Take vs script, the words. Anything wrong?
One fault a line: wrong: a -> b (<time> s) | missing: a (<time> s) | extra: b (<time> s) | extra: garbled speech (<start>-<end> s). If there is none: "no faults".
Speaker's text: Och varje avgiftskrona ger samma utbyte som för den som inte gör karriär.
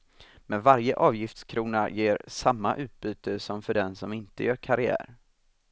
wrong: Och -> Men (0.5 s)